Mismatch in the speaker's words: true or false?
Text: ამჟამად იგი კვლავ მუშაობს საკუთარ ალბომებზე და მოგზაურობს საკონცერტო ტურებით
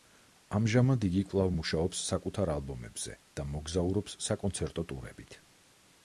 false